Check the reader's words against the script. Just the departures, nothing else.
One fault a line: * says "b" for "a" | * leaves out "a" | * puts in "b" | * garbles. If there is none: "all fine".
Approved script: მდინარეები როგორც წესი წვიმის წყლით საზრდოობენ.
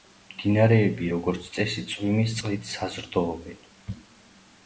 all fine